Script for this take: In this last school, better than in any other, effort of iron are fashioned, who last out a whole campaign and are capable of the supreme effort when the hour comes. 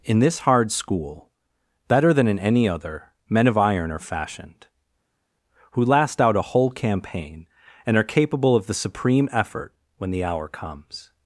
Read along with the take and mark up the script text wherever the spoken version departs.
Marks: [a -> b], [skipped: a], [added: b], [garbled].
In this [last -> hard] school, better than in any other, [effort -> men] of iron are fashioned, who last out a whole campaign and are capable of the supreme effort when the hour comes.